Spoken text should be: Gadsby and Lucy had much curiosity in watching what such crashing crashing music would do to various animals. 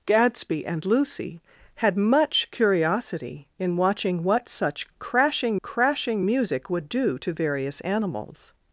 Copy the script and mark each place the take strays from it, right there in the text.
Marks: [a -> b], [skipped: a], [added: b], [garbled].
Gadsby and Lucy had much curiosity in watching what such crashing crashing music would do to various animals.